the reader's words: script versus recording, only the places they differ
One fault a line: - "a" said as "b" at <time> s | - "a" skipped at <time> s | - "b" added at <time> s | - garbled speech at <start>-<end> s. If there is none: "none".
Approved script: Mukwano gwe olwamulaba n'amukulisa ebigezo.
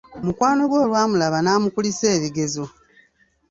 none